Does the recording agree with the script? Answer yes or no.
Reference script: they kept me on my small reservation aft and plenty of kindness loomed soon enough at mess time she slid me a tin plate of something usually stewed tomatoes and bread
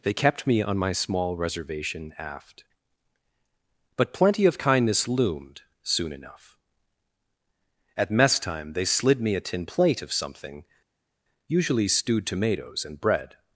no